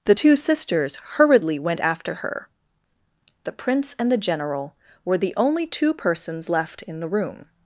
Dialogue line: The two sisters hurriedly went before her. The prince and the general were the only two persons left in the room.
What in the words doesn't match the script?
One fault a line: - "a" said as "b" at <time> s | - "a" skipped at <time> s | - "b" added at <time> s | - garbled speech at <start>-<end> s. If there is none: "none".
- "before" said as "after" at 1.8 s